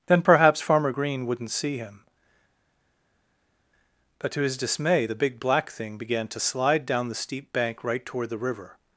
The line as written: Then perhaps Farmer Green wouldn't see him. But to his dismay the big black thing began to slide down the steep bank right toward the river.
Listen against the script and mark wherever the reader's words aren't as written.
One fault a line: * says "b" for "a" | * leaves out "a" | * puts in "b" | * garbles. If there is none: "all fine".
all fine